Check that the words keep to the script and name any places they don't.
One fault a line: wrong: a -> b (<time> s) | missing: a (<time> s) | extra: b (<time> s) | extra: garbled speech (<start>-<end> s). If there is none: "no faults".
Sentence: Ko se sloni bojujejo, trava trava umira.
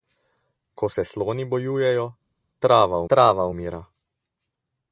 no faults